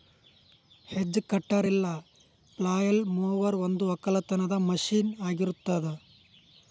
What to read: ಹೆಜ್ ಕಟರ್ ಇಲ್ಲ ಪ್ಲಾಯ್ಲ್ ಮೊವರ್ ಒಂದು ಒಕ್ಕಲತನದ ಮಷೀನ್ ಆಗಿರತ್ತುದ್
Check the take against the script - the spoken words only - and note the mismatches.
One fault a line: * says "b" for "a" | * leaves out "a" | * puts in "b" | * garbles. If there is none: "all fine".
all fine